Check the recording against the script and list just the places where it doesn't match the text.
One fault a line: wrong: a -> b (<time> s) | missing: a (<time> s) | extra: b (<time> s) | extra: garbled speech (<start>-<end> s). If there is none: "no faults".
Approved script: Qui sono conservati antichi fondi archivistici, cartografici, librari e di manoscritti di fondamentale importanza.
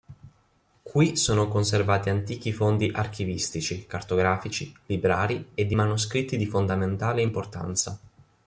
no faults